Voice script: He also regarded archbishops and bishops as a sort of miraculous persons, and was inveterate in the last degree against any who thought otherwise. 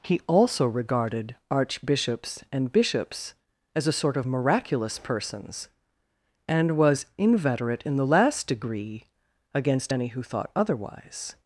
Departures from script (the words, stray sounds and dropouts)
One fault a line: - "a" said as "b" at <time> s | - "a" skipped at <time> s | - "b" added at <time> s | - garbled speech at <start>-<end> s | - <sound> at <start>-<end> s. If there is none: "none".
none